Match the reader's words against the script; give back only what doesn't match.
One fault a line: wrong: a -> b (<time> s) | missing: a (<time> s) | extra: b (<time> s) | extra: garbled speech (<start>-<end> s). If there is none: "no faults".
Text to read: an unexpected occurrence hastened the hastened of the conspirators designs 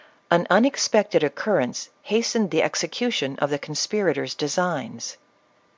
wrong: hastened -> execution (2.6 s)